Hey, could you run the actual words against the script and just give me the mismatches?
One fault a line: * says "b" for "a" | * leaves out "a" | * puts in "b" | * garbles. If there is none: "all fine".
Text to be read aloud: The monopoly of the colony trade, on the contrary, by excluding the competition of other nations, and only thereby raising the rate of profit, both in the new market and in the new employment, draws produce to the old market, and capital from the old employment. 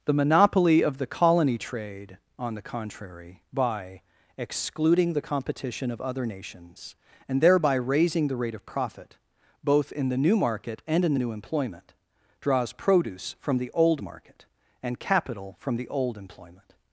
* leaves out "only"
* says "from" for "to"